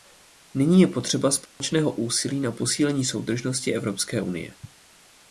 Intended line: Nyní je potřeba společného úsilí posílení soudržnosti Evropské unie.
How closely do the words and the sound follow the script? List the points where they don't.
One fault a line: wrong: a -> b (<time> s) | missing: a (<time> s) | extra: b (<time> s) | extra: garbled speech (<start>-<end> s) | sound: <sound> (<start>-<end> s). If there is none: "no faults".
sound: dropout (1.5-1.6 s)
extra: na (2.4 s)